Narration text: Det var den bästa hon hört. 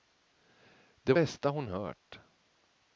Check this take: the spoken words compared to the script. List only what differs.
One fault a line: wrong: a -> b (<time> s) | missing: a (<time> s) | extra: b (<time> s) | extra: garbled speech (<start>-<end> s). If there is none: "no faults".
missing: var den (1.1 s)